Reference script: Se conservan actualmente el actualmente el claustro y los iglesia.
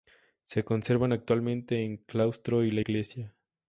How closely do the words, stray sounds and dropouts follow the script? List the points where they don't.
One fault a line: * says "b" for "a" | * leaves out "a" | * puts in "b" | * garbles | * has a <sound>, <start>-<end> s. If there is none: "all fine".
* leaves out "actualmente el"
* says "la" for "los"